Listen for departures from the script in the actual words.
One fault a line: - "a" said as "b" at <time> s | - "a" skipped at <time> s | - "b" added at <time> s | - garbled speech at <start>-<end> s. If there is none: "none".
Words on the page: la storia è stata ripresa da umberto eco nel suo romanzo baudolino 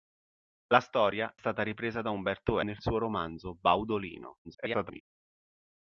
- "è" skipped at 1.4 s
- "eco" skipped at 2.6 s
- garbled speech at 4.4-5.0 s